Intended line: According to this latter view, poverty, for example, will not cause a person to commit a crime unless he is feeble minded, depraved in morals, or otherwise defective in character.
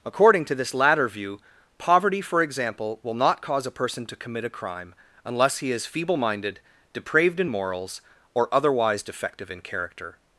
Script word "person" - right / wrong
right